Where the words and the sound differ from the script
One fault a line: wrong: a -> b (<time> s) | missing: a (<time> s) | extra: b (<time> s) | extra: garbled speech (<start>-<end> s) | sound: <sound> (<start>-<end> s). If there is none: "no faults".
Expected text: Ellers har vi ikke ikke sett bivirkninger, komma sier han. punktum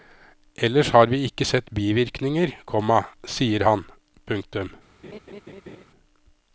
missing: ikke (1.4 s)
sound: laugh (5.0-5.8 s)